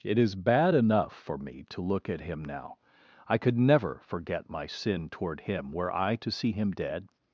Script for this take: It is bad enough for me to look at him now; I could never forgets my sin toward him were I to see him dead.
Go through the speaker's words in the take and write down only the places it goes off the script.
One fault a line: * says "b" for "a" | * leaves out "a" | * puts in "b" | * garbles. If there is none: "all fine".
* says "forget" for "forgets"